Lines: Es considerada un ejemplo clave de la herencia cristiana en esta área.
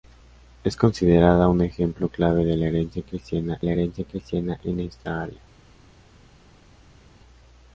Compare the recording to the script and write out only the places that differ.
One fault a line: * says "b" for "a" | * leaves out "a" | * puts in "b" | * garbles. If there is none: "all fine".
* puts in "la herencia cristiana"